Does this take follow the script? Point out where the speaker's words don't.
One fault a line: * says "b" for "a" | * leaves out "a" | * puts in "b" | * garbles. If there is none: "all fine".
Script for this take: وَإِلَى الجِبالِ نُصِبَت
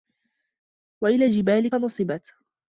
all fine